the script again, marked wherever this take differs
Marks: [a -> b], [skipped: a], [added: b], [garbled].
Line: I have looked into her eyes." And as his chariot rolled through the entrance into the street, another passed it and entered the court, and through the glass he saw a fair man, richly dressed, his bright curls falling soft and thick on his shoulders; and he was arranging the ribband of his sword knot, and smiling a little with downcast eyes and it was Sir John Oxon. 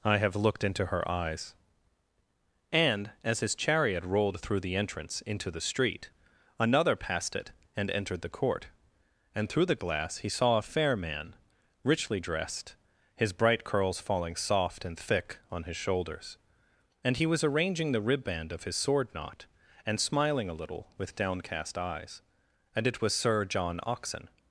I have looked into her eyes." And as his chariot rolled through the entrance into the street, another passed it and entered the court, and through the glass he saw a fair man, richly dressed, his bright curls falling soft and thick on his shoulders; and he was arranging the ribband of his sword knot, and smiling a little with downcast eyes and it was Sir John Oxon.